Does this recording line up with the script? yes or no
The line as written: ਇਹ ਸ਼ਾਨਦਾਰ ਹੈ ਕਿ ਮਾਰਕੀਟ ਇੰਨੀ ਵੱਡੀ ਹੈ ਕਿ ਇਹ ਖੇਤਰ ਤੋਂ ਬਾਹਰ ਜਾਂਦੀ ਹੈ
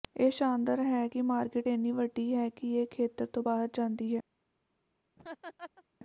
yes